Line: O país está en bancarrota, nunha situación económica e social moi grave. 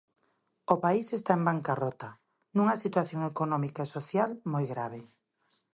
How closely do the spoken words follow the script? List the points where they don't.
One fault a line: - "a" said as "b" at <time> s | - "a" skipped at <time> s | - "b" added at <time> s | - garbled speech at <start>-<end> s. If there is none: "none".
none